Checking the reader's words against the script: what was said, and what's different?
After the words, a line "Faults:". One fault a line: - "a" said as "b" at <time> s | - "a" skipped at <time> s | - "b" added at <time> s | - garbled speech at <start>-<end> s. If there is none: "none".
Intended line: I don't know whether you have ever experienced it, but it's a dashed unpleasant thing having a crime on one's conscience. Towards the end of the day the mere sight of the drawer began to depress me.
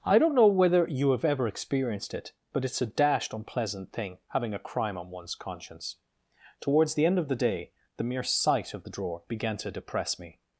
I don't know whether you have ever experienced it, but it's a dashed unpleasant thing having a crime on one's conscience. Towards the end of the day the mere sight of the drawer began to depress me.
Faults:
none